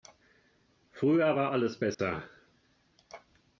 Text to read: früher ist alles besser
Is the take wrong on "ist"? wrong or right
wrong